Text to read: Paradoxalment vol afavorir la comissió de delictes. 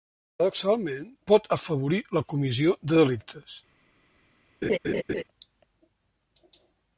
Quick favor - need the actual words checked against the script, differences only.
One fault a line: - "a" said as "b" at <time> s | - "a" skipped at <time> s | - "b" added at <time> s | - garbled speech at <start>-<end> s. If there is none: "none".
- "vol" said as "pot" at 1.3 s